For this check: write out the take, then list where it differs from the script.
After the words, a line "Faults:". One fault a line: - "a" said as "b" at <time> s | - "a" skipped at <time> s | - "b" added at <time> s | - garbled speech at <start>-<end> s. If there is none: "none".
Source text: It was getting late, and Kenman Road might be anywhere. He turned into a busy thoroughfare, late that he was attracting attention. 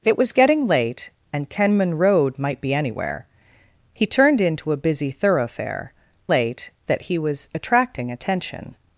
It was getting late, and Kenman Road might be anywhere. He turned into a busy thoroughfare, late that he was attracting attention.
Faults:
none